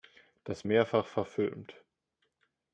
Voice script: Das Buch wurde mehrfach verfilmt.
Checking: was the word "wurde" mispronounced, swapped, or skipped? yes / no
yes